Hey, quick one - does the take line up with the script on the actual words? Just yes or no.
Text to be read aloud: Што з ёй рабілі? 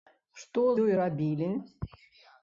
no